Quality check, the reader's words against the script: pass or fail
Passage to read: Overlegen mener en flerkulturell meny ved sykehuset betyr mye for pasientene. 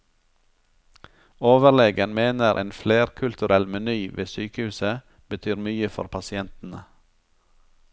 pass